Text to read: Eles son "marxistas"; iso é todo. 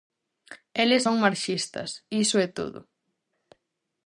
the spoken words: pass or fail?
pass